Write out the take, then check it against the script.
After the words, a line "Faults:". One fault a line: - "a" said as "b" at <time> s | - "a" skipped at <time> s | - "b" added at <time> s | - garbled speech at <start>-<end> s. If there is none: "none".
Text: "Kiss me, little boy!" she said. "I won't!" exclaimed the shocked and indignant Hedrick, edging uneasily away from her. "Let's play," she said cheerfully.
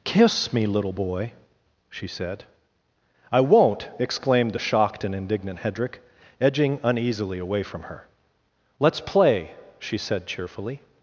"Kiss me, little boy!" she said. "I won't!" exclaimed the shocked and indignant Hedrick, edging uneasily away from her. "Let's play," she said cheerfully.
Faults:
none